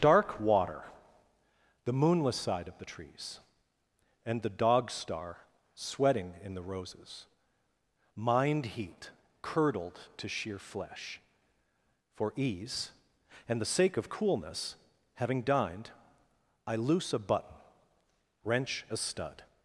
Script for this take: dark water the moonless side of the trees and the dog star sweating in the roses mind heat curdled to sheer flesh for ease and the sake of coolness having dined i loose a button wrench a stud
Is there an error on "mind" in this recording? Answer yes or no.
no